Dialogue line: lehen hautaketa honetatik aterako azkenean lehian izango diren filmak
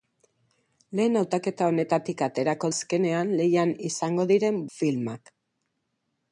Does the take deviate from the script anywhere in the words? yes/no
no